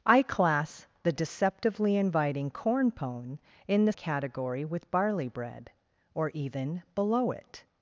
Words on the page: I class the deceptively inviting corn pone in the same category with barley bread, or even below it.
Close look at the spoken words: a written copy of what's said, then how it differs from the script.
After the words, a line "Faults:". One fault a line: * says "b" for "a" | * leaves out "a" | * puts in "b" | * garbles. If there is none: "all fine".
I class the deceptively inviting corn pone in the category with barley bread, or even below it.
Faults:
* leaves out "same"